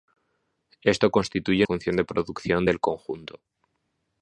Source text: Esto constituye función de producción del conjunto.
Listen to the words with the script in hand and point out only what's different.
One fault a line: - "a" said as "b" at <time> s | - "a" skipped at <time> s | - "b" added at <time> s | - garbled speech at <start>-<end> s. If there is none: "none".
none